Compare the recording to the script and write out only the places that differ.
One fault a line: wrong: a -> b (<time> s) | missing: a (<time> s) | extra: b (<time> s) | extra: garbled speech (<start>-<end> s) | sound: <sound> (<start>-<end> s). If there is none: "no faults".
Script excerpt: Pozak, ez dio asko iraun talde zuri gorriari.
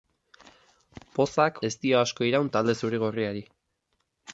no faults